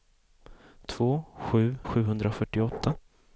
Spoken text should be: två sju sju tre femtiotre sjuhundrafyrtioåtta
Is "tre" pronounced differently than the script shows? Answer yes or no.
yes